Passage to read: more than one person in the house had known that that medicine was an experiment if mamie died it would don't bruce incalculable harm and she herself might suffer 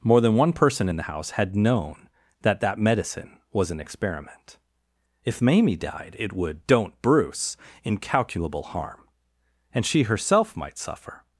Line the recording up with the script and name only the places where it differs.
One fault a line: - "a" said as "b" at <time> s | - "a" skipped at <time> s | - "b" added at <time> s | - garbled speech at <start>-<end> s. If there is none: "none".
none